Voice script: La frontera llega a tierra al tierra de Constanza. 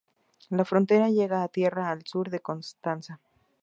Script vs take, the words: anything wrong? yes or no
yes